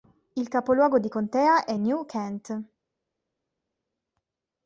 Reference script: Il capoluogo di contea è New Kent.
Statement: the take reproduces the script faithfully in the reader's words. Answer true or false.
true